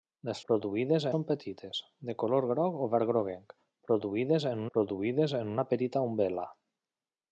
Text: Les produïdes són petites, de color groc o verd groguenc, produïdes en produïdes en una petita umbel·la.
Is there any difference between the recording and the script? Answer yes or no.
no